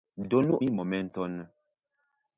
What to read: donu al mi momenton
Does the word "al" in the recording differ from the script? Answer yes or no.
yes